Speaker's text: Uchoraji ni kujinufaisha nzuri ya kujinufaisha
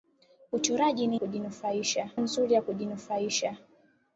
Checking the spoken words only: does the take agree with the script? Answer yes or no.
yes